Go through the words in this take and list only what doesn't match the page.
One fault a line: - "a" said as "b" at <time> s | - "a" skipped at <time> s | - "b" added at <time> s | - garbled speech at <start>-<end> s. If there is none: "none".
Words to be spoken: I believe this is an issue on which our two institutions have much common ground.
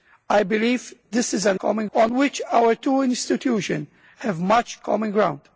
- "issue" said as "common" at 1.6 s